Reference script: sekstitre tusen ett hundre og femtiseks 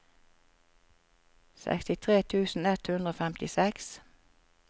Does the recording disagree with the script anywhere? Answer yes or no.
no